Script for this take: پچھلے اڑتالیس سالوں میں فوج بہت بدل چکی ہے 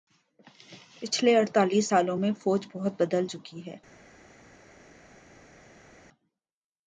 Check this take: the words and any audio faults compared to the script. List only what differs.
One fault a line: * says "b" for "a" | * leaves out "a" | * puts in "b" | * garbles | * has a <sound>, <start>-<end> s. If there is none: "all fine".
all fine